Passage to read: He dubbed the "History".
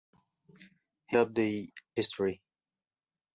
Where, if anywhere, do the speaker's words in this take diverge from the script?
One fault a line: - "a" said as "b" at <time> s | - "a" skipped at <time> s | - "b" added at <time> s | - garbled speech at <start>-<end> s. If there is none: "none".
none